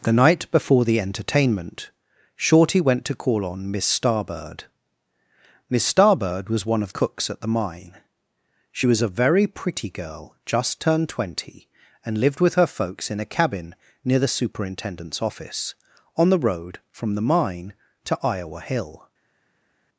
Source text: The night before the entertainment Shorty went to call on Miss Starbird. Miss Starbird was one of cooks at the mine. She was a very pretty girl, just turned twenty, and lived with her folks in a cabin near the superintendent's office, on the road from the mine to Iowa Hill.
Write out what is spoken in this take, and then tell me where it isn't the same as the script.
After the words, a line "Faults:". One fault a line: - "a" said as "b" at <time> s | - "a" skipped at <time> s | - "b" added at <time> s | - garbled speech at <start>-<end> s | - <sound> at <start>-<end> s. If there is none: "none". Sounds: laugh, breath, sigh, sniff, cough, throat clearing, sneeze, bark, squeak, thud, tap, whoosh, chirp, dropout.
The night before the entertainment Shorty went to call on Miss Starbird. Miss Starbird was one of cooks at the mine. She was a very pretty girl, just turned twenty, and lived with her folks in a cabin near the superintendent's office, on the road from the mine to Iowa Hill.
Faults:
none